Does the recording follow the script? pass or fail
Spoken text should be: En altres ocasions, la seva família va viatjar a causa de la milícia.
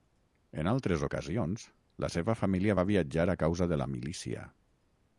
pass